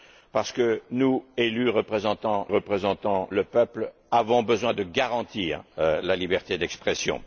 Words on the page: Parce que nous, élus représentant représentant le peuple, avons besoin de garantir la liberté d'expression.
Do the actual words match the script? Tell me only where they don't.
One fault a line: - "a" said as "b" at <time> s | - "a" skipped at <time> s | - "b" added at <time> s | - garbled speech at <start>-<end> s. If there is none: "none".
none